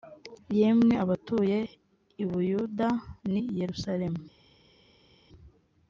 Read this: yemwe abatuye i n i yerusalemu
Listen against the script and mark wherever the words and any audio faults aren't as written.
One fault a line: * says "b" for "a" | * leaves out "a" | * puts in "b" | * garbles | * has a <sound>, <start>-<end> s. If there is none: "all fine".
* puts in "buyuda"